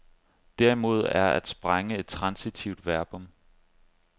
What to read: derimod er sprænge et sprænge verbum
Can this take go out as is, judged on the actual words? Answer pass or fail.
fail